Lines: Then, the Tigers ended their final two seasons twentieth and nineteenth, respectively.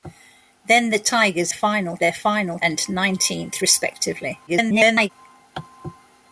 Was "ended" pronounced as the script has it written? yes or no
no